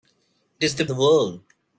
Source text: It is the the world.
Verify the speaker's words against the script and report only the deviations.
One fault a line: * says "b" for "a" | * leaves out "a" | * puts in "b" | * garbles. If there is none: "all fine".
all fine